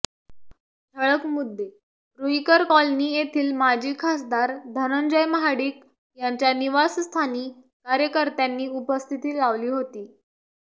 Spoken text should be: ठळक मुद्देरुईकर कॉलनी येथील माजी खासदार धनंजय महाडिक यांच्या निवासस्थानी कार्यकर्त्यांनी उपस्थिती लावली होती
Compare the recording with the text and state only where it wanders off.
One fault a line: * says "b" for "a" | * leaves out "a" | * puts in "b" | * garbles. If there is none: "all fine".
all fine